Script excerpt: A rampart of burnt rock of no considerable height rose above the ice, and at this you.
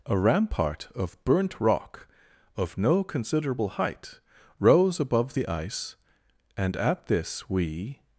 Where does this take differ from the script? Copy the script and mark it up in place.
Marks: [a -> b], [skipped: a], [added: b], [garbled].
A rampart of burnt rock of no considerable height rose above the ice, and at this [you. -> we]